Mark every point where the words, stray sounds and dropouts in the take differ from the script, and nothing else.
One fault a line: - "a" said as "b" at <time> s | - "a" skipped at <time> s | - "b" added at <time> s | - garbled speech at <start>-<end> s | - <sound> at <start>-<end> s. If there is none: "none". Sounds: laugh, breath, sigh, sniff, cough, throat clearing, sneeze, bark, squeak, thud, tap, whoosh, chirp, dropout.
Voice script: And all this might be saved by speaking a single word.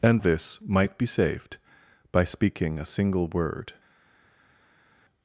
- "all" skipped at 0.2 s